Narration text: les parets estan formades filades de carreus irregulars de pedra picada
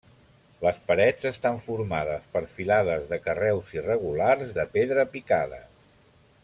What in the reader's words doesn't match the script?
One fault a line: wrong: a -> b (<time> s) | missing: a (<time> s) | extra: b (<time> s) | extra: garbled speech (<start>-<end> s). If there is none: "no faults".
extra: per (2.3 s)